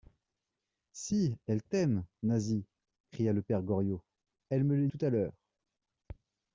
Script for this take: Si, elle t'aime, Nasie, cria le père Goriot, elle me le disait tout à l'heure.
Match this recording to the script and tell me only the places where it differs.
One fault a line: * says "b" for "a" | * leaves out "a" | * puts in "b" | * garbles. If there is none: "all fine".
* leaves out "disait"